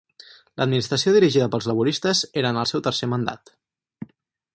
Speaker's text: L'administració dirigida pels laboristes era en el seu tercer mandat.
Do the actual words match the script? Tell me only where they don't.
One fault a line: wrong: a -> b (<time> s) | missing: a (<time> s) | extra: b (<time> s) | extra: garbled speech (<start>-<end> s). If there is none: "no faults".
no faults